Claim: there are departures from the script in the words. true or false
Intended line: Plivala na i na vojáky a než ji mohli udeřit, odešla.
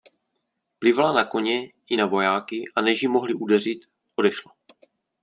true